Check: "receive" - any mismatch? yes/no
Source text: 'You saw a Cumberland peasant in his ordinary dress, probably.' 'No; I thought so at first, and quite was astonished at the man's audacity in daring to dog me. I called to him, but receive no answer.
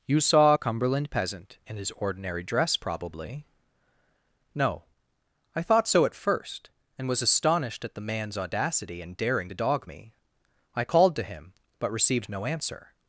yes